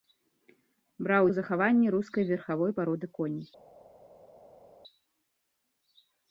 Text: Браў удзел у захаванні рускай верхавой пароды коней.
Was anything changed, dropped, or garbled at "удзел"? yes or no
yes